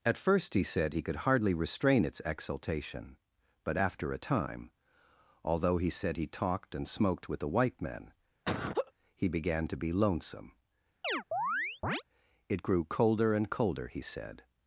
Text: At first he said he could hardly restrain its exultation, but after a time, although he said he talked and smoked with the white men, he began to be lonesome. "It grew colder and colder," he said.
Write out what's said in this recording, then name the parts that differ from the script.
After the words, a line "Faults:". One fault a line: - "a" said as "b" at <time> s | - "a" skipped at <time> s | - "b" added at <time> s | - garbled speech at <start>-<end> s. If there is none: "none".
At first he said he could hardly restrain its exultation, but after a time, although he said he talked and smoked with the white men, he began to be lonesome. "It grew colder and colder," he said.
Faults:
none